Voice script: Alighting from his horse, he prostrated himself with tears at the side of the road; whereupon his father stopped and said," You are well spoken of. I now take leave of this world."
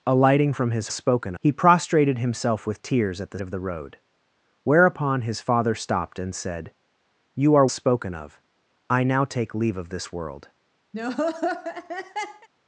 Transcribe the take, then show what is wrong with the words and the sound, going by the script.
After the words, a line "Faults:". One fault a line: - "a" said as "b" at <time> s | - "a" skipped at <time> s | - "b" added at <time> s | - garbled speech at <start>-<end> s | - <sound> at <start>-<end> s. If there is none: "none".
Alighting from his spoken, he prostrated himself with tears at the of the road; whereupon his father stopped and said," You are spoken of. I now take leave of this world."
Faults:
- "horse" said as "spoken" at 0.9 s
- "side" skipped at 3.4 s
- "well" skipped at 7.7 s
- laugh at 10.9-12.5 s